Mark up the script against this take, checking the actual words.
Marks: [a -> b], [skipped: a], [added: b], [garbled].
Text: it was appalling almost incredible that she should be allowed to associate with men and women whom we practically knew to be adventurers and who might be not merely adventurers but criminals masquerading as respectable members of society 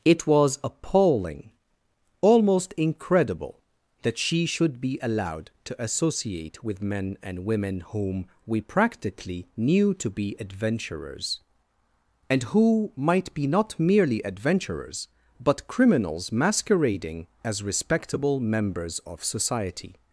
it was appalling almost incredible that she should be allowed to associate with men and women whom we practically knew to be adventurers and who might be not merely adventurers but criminals masquerading as respectable members of society